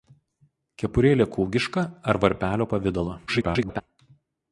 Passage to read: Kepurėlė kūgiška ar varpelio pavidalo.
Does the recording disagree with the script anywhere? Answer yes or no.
yes